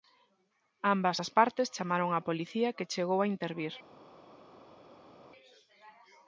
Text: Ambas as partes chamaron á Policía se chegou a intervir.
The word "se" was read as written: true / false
false